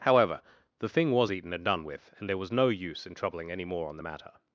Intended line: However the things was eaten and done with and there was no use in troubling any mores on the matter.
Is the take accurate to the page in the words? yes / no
no